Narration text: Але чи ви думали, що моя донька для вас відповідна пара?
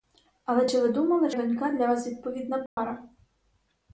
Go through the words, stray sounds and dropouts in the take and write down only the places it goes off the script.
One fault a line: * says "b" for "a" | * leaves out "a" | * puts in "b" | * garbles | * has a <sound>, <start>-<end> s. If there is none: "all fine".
* leaves out "що моя"
* has a dropout, 2.7-2.8 s